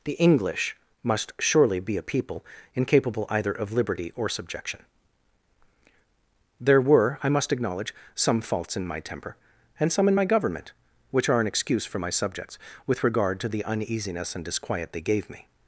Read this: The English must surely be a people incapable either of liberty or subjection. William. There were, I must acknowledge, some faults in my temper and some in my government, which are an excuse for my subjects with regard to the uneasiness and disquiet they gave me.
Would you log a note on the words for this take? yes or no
yes